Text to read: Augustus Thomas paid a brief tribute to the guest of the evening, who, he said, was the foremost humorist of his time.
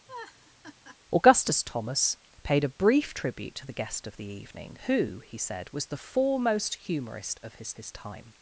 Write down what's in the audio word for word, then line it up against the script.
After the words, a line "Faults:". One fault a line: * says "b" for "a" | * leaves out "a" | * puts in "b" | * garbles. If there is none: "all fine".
Augustus Thomas paid a brief tribute to the guest of the evening, who, he said, was the foremost humorist of his his time.
Faults:
* puts in "his"